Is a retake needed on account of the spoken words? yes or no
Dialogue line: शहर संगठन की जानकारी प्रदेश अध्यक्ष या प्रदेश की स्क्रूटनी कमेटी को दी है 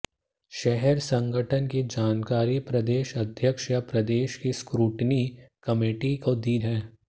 no